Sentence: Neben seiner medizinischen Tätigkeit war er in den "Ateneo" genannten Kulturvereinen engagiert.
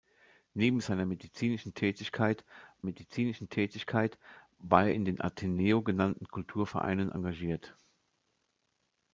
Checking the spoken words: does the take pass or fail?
fail